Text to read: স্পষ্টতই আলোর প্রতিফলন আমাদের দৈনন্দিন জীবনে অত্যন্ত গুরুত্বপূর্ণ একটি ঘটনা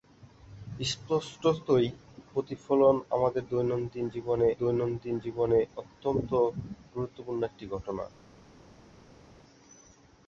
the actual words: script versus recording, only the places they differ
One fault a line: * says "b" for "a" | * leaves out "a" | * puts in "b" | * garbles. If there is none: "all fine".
* leaves out "আলোর"
* puts in "দৈনন্দিন জীবনে"